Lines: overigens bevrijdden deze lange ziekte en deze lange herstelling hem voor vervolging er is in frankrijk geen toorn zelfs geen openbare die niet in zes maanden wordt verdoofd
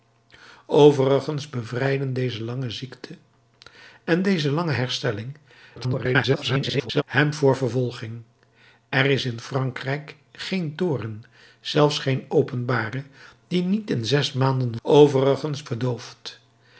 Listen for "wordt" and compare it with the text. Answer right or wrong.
wrong